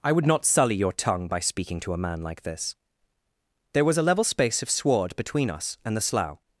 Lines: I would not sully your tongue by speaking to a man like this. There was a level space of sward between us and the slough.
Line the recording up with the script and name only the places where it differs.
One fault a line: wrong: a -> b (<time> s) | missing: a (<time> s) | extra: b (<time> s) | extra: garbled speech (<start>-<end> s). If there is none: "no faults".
no faults